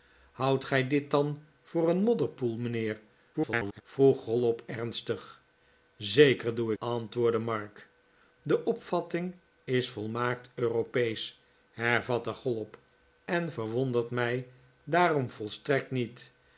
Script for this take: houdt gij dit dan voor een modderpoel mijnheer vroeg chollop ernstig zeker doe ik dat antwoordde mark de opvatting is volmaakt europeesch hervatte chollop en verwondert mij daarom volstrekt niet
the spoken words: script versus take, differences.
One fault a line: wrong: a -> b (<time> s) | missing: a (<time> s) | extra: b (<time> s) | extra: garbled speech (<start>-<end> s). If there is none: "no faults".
extra: garbled speech (3.3-3.8 s)
missing: ik dat (6.7 s)